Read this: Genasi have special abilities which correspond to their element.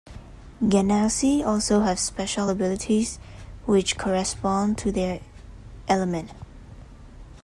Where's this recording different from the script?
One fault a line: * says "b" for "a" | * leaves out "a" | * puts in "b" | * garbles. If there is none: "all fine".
* puts in "also"